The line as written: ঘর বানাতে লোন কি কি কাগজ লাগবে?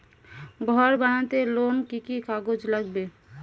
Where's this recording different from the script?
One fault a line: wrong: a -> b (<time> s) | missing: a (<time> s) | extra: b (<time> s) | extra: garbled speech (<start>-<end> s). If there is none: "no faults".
no faults